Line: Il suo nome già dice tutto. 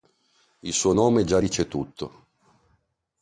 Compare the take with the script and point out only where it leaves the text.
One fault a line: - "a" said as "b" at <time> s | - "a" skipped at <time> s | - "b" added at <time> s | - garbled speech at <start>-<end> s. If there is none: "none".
none